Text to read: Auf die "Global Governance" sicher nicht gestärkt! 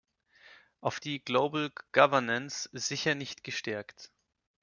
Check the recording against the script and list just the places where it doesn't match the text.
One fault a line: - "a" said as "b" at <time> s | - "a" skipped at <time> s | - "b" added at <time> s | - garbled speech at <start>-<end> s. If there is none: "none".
none